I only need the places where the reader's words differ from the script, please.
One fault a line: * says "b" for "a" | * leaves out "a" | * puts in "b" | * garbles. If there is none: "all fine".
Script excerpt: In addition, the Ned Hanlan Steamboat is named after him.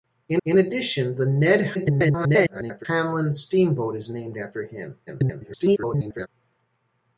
* puts in "in"
* garbles
* garbles